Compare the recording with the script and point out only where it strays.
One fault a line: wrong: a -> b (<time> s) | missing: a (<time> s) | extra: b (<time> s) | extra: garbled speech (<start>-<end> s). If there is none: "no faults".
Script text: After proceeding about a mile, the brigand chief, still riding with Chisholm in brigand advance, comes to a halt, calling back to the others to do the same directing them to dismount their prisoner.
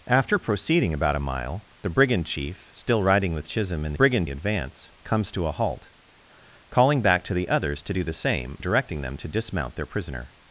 no faults